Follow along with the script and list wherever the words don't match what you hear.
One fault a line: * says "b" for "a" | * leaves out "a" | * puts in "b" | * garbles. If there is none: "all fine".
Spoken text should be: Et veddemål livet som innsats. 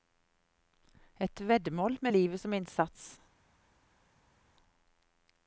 * puts in "med"